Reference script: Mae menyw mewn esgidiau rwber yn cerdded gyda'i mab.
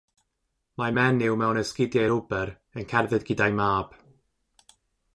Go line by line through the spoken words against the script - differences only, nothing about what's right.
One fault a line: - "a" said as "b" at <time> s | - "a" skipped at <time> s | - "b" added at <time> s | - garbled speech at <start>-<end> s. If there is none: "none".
none